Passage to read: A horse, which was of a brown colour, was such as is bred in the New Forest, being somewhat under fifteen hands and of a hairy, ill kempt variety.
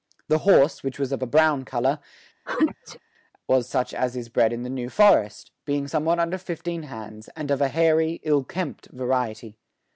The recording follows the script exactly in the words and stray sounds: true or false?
false